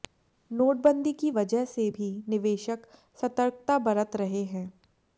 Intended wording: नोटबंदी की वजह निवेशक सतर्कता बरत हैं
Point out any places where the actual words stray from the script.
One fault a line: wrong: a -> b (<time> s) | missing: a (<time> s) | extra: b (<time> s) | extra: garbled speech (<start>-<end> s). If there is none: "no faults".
extra: से भी (1.6 s)
extra: रहे (4.2 s)